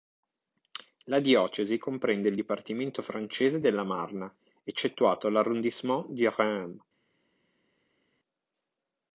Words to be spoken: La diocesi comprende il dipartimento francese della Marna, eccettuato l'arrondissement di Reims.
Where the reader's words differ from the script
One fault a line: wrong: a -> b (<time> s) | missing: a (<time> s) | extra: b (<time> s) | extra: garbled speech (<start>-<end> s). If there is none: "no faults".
no faults